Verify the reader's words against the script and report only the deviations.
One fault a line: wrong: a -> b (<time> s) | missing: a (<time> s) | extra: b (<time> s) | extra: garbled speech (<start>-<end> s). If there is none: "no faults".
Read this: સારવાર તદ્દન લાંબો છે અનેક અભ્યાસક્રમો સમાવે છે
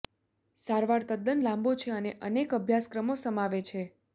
extra: અને (2.0 s)